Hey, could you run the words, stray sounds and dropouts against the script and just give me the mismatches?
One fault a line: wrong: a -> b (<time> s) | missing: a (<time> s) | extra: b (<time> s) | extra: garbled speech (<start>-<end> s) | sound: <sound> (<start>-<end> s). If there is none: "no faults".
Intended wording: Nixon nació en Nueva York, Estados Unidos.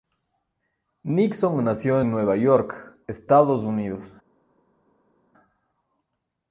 no faults